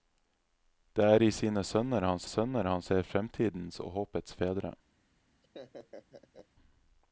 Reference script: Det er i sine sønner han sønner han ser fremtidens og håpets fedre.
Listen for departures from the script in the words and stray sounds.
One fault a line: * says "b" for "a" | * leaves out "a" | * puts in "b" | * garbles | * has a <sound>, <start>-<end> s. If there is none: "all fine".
* has a laugh, 5.4-6.5 s